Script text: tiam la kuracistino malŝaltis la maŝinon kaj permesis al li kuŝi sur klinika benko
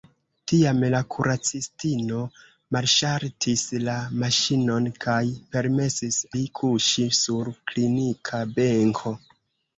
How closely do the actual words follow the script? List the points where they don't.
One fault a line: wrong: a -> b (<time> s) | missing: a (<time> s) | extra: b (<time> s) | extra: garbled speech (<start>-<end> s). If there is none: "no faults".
missing: al (6.2 s)